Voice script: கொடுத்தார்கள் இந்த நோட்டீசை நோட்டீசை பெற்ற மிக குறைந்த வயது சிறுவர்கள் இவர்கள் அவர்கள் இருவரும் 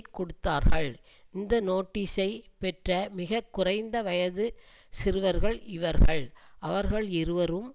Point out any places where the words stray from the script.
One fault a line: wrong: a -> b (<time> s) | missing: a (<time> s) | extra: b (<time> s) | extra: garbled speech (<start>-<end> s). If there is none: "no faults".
missing: நோட்டீசை (2.3 s)